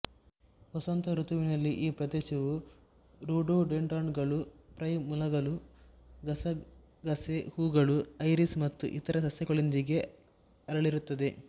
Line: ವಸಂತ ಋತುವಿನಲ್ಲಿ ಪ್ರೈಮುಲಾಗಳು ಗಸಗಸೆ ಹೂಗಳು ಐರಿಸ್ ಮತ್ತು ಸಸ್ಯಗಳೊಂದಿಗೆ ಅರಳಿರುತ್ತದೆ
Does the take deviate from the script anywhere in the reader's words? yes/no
yes